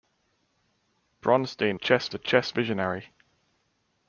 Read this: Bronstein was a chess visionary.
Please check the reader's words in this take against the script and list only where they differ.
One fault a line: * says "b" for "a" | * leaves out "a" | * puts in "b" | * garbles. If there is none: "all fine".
* says "chess" for "was"